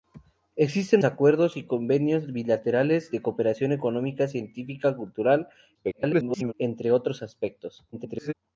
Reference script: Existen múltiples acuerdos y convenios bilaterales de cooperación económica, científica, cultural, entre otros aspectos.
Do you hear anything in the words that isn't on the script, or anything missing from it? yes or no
yes